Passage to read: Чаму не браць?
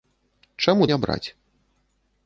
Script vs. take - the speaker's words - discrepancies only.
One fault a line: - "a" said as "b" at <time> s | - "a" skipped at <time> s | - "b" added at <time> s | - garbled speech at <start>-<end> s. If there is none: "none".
none